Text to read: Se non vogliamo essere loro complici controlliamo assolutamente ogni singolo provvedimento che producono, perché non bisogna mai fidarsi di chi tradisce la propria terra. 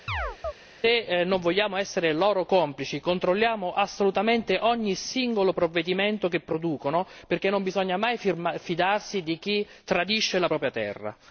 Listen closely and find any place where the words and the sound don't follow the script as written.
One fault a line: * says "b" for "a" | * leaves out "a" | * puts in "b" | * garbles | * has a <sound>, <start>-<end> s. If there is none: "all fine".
* has a chirp, 0.1-0.5 s